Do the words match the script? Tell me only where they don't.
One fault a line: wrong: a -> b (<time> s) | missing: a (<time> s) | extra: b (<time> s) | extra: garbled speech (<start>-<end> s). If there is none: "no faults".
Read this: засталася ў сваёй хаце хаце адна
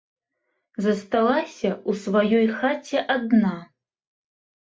missing: хаце (3.0 s)